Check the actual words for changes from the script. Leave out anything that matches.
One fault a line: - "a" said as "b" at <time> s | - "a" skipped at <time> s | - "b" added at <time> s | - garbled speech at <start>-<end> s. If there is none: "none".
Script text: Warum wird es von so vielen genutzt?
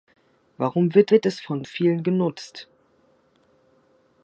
- "wird" added at 1.1 s
- "so" skipped at 1.7 s